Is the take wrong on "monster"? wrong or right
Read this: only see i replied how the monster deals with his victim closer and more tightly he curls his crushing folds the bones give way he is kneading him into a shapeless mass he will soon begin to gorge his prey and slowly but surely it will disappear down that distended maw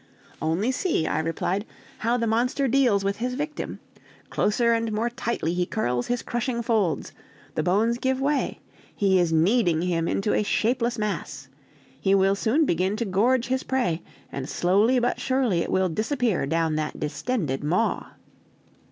right